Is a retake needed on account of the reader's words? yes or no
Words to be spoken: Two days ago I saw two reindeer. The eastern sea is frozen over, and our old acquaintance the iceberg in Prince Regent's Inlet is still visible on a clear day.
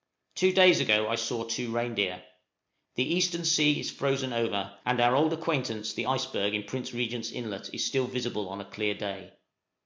no